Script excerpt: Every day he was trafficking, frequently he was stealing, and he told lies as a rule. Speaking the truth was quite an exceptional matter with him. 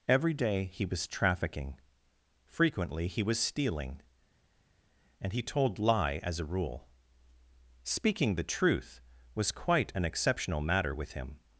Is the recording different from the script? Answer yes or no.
yes